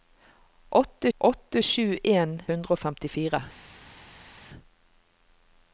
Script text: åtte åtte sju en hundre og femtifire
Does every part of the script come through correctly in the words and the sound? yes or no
yes